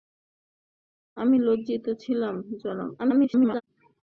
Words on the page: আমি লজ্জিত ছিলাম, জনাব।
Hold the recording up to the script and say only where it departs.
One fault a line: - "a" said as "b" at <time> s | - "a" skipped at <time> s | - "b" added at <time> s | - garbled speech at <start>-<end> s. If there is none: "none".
- garbled speech at 3.0-3.6 s